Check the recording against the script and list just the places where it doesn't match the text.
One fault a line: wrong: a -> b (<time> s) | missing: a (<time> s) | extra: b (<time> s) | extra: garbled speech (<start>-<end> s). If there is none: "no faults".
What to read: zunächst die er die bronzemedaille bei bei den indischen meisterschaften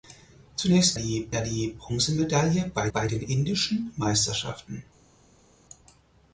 no faults